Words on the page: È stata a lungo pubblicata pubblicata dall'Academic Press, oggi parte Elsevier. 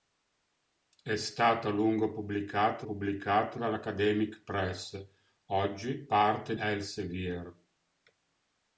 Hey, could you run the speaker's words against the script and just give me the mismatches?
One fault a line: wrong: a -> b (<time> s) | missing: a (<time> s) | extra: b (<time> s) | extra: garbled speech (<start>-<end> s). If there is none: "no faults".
no faults